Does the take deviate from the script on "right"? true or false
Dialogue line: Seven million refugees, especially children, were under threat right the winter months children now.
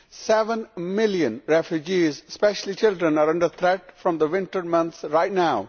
true